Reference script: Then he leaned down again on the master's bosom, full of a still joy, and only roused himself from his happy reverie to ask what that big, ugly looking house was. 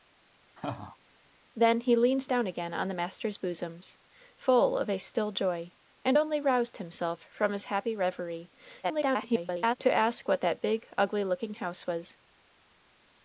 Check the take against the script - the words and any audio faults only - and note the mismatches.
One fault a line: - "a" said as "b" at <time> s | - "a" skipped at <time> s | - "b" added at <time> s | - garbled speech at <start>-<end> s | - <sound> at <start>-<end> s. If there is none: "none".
- laugh at 0.6-1.0 s
- garbled speech at 8.8-9.8 s